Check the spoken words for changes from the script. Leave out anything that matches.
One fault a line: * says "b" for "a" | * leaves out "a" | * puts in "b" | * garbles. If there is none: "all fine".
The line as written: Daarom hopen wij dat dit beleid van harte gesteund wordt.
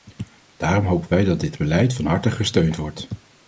all fine